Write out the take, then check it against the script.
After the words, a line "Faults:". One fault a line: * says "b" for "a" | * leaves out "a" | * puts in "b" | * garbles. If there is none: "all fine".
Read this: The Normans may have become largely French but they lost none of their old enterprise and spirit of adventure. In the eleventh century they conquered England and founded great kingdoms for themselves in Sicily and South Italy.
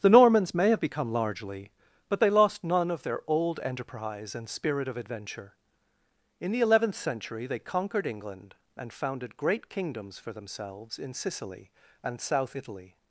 The Normans may have become largely but they lost none of their old enterprise and spirit of adventure. In the eleventh century they conquered England and founded great kingdoms for themselves in Sicily and South Italy.
Faults:
* leaves out "French"